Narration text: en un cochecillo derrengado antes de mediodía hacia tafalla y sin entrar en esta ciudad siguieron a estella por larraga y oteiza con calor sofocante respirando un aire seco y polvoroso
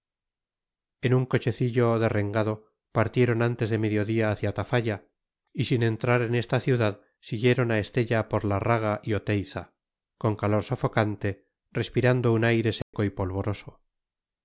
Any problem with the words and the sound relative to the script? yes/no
yes